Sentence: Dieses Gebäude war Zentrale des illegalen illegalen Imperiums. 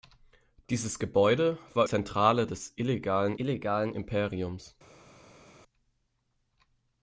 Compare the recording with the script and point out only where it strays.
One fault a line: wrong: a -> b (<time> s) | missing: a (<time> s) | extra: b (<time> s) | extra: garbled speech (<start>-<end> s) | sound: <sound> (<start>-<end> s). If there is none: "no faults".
no faults